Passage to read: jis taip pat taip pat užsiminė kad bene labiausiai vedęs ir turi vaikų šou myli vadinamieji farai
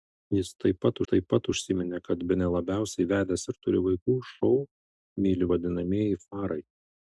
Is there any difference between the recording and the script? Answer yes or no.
no